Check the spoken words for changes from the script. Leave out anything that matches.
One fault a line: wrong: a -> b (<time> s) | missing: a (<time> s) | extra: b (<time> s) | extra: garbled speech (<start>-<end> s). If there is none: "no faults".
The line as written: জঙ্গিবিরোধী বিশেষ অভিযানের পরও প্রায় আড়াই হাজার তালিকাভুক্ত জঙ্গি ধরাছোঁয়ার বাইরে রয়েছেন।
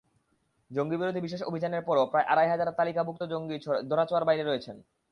no faults